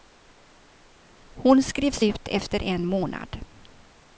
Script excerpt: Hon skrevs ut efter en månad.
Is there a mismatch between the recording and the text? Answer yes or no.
no